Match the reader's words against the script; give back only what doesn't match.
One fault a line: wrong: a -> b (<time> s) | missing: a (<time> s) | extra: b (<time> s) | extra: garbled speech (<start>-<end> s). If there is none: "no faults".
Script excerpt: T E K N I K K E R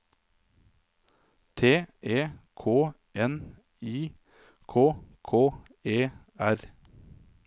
no faults